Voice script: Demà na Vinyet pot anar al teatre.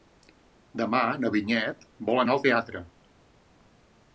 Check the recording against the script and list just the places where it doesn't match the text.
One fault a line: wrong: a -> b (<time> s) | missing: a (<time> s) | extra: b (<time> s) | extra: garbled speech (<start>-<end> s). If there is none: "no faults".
wrong: pot -> vol (2.1 s)